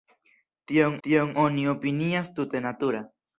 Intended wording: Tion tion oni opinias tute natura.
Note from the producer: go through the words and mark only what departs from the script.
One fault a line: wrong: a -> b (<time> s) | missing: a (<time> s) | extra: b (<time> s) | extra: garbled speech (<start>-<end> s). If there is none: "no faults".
no faults